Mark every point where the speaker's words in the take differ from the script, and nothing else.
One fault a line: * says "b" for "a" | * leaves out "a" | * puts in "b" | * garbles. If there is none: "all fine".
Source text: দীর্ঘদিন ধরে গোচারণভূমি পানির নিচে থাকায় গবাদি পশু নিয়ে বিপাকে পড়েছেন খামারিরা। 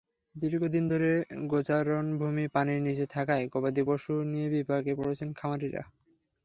all fine